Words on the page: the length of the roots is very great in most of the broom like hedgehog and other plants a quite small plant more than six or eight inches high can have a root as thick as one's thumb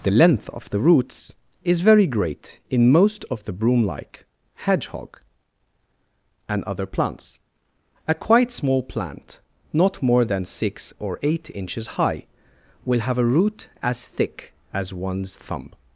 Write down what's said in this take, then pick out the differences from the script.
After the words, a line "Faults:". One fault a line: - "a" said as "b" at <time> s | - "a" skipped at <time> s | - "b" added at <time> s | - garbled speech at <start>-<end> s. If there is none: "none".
the length of the roots is very great in most of the broom like hedgehog and other plants a quite small plant not more than six or eight inches high will have a root as thick as one's thumb
Faults:
- "not" added at 9.7 s
- "can" said as "will" at 12.8 s